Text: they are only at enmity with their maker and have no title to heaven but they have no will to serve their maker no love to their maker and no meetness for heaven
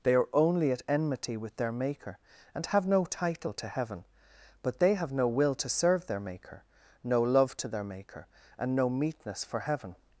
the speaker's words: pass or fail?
pass